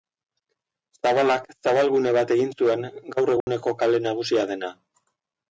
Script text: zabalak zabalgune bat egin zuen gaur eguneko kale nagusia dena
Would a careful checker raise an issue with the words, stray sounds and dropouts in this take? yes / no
yes